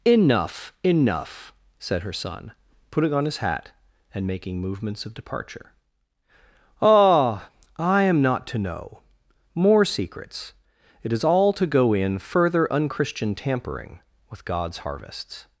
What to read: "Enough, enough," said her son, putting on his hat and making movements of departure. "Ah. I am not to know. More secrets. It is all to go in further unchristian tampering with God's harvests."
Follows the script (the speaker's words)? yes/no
yes